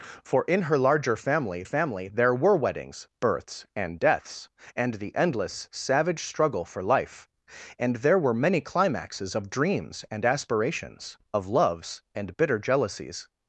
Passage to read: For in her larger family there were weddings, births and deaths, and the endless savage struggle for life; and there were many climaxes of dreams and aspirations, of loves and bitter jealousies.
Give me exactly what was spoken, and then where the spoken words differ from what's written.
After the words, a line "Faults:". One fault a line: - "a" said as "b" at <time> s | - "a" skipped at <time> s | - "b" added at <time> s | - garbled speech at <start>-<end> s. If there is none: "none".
For in her larger family family there were weddings, births and deaths, and the endless savage struggle for life; and there were many climaxes of dreams and aspirations, of loves and bitter jealousies.
Faults:
- "family" added at 1.6 s